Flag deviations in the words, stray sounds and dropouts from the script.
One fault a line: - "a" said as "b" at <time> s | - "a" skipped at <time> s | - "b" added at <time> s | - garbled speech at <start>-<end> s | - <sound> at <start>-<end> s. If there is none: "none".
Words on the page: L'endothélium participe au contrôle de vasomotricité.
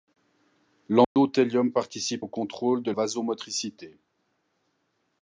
- dropout at 1.0-1.2 s